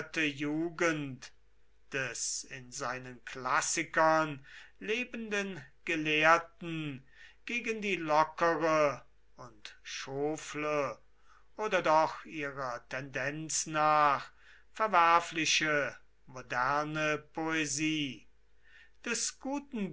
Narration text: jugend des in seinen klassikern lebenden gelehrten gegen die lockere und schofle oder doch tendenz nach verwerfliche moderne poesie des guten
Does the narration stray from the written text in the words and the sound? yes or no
yes